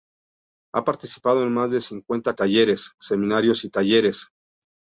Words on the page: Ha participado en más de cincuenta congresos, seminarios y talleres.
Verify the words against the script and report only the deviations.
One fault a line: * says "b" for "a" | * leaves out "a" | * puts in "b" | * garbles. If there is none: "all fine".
* says "talleres" for "congresos"